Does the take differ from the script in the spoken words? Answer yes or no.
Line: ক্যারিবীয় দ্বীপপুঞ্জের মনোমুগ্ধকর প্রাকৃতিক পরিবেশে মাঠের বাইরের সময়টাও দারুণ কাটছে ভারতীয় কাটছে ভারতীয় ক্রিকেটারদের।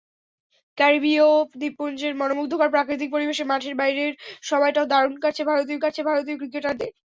no